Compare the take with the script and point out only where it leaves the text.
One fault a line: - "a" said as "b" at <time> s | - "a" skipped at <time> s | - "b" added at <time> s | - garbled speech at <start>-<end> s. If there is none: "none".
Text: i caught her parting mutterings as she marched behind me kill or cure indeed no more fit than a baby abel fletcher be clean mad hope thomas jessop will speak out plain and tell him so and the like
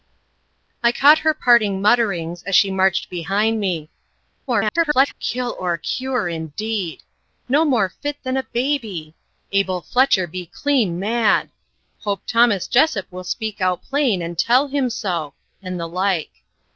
- garbled speech at 4.5-5.1 s